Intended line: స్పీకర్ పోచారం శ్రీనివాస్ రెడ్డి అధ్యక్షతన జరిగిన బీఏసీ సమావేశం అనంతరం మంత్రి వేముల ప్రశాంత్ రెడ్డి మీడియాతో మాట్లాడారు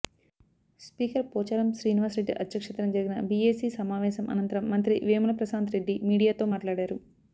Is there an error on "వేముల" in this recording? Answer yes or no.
no